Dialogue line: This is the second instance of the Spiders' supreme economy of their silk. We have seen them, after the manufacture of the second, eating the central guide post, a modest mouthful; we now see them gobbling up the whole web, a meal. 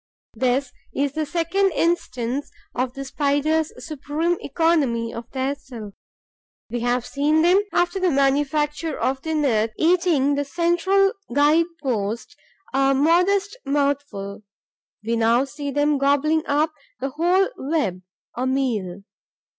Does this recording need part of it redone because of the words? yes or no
yes